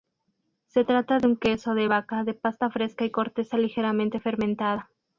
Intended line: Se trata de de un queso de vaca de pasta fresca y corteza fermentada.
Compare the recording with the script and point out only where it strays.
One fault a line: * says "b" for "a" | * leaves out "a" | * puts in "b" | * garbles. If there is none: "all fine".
* leaves out "de"
* puts in "ligeramente"